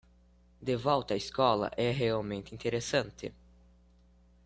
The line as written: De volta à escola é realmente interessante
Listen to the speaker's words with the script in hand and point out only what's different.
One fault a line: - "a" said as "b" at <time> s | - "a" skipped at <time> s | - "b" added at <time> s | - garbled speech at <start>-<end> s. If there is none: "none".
none